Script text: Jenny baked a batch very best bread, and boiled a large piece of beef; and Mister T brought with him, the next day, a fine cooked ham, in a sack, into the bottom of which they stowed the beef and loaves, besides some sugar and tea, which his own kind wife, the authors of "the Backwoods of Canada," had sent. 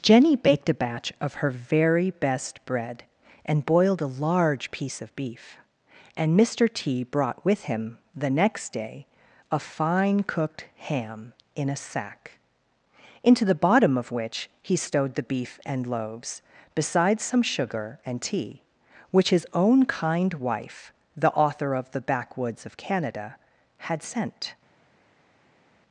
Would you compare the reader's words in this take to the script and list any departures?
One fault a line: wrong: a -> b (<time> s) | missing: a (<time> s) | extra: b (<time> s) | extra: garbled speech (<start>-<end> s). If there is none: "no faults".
extra: of her (1.2 s)
wrong: they -> he (14.6 s)
wrong: authors -> author (21.3 s)